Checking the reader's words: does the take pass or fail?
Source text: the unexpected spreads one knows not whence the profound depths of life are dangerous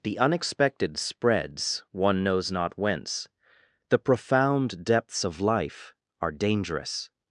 pass